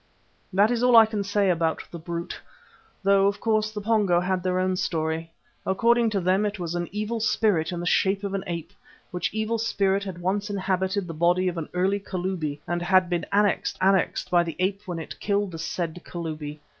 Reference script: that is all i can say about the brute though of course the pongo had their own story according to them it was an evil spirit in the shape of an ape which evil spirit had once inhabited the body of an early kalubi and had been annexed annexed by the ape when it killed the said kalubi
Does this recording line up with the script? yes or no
yes